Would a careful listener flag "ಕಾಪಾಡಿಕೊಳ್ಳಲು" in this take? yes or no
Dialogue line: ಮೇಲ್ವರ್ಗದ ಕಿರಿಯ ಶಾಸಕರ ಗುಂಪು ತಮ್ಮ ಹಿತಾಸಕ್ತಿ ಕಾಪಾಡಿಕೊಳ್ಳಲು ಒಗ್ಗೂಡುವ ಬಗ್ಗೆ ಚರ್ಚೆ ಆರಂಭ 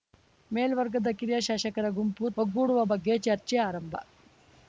yes